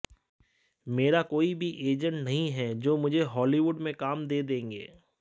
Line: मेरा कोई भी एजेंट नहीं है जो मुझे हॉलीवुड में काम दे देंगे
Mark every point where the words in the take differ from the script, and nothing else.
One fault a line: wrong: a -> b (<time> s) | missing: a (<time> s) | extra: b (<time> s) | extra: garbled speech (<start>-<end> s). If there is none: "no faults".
no faults